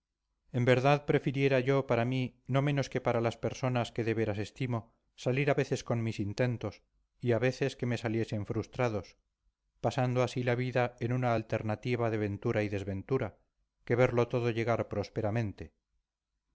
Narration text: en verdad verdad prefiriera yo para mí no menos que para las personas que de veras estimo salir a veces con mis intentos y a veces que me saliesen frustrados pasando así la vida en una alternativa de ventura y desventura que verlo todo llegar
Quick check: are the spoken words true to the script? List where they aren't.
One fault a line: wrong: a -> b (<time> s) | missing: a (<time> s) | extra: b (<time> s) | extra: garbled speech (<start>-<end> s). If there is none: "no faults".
missing: verdad (1.1 s)